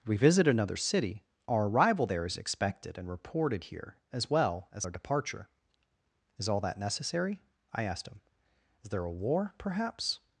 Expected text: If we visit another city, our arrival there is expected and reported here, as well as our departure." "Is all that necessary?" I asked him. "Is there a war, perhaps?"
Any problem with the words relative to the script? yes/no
yes